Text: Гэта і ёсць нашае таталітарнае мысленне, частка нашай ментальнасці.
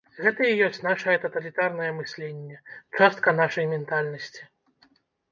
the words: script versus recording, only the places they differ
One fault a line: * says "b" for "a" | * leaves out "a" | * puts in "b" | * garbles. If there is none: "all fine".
all fine